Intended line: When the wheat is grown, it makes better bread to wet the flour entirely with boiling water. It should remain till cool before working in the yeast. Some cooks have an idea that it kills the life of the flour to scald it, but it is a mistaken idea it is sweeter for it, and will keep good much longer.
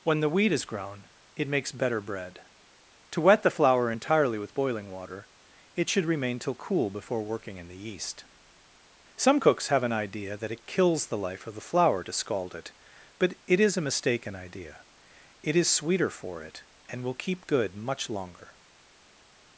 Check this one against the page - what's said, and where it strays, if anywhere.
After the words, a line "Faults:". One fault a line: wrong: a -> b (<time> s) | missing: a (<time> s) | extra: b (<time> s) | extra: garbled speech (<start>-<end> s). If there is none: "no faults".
When the wheat is grown, it makes better bread to wet the flour entirely with boiling water. It should remain till cool before working in the yeast. Some cooks have an idea that it kills the life of the flour to scald it, but it is a mistaken idea it is sweeter for it, and will keep good much longer.
Faults:
no faults